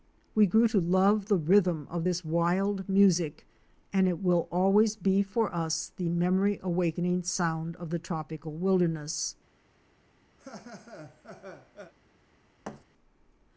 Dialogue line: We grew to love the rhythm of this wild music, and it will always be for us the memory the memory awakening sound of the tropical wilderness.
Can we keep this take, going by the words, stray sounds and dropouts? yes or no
no